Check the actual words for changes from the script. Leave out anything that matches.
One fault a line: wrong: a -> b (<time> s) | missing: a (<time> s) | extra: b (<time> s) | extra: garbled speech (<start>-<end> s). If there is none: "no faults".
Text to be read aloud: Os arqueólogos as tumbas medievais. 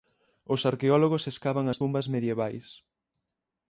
extra: escavan (1.3 s)